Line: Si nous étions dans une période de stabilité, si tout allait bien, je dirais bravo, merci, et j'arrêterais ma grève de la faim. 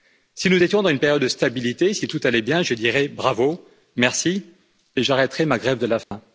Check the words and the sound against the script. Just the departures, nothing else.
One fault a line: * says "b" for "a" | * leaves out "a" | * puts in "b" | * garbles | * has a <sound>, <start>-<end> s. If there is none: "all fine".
* has a dropout, 6.0-6.1 s